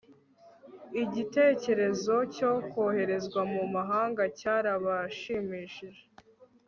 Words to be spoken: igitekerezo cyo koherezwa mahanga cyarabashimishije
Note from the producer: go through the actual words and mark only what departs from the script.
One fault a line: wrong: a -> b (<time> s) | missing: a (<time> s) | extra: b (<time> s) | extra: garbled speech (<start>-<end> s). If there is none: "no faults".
extra: mu (3.5 s)